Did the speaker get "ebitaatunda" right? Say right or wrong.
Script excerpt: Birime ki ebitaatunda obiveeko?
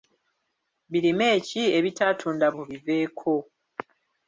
right